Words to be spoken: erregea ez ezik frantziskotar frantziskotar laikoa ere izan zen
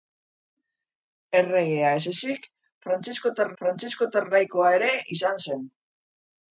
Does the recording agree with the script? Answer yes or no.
yes